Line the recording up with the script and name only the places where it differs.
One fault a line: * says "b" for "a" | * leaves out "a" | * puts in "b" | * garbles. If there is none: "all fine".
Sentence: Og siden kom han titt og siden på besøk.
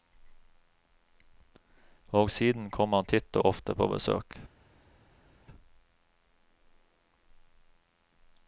* says "ofte" for "siden"